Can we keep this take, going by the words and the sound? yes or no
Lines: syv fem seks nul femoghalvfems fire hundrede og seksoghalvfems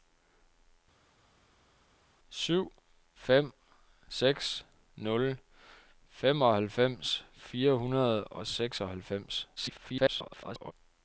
no